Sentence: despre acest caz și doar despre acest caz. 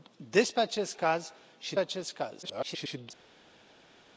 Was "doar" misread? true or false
true